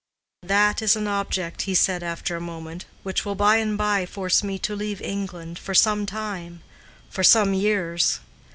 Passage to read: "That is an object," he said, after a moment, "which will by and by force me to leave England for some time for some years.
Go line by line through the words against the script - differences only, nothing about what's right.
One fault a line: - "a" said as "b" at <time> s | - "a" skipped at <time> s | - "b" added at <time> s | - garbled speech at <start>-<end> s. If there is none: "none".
none